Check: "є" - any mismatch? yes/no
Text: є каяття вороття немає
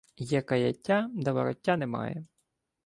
no